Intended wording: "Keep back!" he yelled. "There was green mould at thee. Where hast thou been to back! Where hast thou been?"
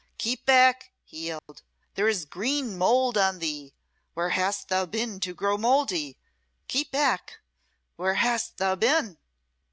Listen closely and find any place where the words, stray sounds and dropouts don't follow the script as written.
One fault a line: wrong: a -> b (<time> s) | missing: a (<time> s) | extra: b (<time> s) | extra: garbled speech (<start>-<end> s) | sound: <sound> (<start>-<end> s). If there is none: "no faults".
sound: dropout (1.4-1.5 s)
wrong: was -> is (2.1 s)
wrong: at -> on (3.2 s)
extra: grow mouldy Keep (5.3 s)